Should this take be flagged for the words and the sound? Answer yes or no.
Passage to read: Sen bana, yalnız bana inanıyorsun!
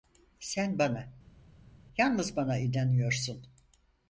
no